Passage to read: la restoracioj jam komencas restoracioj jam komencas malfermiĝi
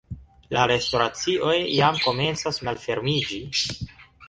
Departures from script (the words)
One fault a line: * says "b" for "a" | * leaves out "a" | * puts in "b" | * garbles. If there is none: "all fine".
* leaves out "restoracioj jam komencas"